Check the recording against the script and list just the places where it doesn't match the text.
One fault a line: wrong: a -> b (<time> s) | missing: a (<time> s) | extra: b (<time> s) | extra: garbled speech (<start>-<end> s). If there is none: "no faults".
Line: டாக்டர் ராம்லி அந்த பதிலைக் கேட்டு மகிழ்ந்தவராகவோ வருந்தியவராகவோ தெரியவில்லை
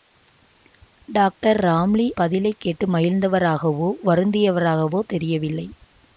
missing: அந்த (2.1 s)